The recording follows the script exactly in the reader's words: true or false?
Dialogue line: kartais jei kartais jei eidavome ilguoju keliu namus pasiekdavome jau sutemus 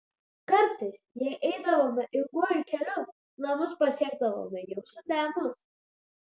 false